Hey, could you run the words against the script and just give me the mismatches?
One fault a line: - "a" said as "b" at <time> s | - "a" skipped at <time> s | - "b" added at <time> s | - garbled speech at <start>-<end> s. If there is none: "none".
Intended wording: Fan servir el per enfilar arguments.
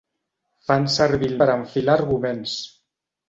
none